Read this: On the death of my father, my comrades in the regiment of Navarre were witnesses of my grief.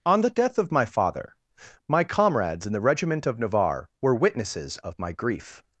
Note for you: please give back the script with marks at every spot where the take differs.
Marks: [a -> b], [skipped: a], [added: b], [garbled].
On the death of my father, my comrades in the regiment of Navarre were witnesses of my grief.